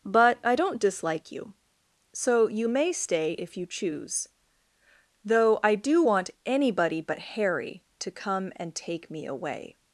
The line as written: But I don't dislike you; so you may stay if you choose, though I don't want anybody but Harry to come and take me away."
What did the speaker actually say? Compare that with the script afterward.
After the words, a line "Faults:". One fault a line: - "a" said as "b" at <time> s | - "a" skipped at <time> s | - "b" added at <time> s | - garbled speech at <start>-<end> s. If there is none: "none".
But I don't dislike you; so you may stay if you choose, though I do want anybody but Harry to come and take me away."
Faults:
- "don't" said as "do" at 5.7 s